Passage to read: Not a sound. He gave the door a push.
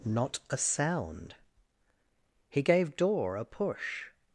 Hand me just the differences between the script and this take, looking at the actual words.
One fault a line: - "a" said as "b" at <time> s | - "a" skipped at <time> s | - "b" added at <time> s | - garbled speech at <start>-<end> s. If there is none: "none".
- "the" skipped at 3.0 s